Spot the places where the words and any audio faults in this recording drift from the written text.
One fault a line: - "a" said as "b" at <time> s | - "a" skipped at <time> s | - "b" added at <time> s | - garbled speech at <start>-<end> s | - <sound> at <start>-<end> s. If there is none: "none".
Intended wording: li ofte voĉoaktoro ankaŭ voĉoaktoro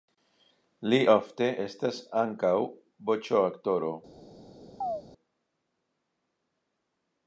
- "voĉoaktoro" said as "estas" at 1.6 s
- chirp at 4.8-5.0 s